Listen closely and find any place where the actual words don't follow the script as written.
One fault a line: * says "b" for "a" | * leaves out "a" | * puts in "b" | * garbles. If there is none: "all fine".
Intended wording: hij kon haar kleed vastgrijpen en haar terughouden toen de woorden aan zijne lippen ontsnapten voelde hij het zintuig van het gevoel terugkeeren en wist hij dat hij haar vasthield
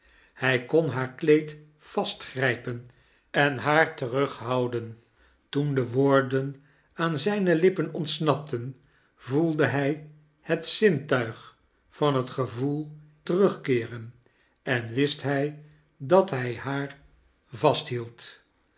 all fine